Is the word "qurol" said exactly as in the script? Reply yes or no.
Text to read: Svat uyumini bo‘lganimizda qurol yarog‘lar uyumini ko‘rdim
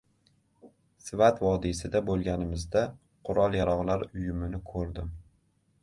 yes